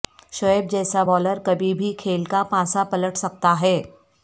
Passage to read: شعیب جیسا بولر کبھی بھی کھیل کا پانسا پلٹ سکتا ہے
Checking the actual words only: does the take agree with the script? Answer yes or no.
yes